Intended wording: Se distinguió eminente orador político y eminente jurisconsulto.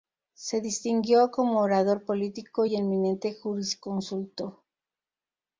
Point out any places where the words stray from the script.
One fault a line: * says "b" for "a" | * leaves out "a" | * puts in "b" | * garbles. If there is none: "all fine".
* says "como" for "eminente"